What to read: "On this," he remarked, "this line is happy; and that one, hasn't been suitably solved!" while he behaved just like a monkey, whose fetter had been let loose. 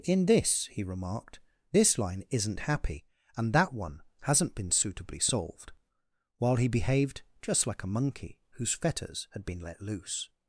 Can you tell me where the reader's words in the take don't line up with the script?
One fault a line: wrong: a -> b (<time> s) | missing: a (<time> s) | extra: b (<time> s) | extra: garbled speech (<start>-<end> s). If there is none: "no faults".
wrong: On -> In (0.0 s)
wrong: is -> isn't (2.3 s)
wrong: fetter -> fetters (8.7 s)